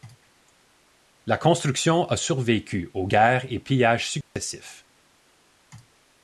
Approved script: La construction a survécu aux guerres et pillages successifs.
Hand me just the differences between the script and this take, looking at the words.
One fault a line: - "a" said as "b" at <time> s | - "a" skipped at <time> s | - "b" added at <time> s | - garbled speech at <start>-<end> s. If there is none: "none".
none